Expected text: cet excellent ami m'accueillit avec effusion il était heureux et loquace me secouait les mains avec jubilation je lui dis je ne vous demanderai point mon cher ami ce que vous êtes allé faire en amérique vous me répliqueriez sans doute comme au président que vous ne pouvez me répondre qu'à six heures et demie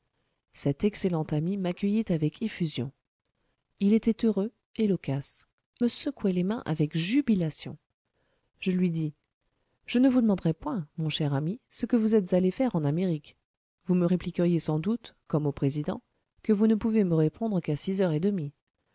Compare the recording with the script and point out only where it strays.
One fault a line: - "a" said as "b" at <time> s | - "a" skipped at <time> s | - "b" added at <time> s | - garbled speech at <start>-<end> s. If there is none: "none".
none